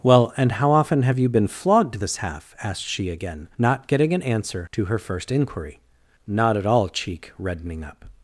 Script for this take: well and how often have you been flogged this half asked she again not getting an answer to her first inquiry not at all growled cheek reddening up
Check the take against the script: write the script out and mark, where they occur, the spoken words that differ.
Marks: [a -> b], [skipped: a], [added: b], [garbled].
well and how often have you been flogged this half asked she again not getting an answer to her first inquiry not at all [skipped: growled] cheek reddening up